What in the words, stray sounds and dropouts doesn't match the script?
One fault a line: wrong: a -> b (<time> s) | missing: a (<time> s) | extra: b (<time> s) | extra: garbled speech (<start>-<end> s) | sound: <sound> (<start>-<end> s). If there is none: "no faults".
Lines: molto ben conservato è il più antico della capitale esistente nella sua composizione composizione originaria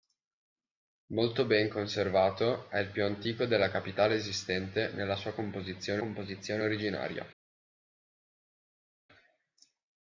no faults